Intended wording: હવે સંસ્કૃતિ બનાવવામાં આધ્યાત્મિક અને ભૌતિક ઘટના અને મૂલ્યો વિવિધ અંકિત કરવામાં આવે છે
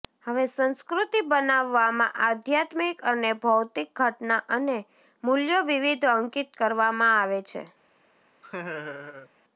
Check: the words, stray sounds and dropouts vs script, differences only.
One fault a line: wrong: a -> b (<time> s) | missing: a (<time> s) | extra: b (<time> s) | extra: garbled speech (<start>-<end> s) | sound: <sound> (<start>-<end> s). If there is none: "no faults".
sound: laugh (8.4-9.3 s)